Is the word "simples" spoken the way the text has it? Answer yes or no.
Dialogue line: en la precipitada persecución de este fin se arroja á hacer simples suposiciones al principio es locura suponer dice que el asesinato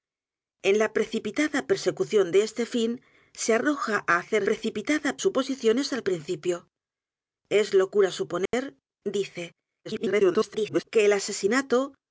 no